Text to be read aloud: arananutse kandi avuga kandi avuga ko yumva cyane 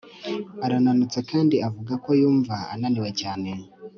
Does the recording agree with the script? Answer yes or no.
no